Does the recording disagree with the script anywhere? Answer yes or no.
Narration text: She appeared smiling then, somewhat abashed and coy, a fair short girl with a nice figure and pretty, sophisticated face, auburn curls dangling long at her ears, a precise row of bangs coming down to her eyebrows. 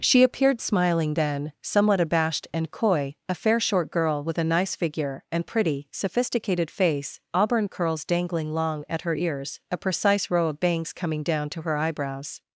no